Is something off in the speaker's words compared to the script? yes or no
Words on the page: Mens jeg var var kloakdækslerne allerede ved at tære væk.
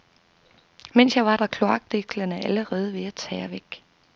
no